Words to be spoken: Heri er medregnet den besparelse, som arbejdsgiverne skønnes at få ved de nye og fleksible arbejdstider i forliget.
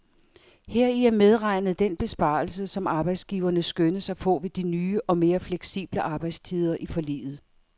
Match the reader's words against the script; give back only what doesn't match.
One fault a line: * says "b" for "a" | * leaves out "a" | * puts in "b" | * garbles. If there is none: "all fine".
* puts in "mere"